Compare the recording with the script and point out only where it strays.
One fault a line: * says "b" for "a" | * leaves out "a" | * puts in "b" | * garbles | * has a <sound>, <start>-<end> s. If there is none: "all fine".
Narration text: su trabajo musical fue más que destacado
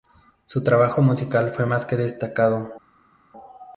all fine